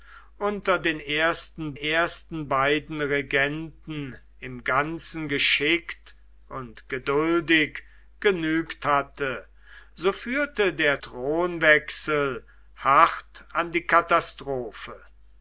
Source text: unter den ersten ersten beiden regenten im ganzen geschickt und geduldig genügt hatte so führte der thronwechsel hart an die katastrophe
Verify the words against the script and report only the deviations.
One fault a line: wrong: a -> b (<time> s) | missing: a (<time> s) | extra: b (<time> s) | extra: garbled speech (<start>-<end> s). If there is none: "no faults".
no faults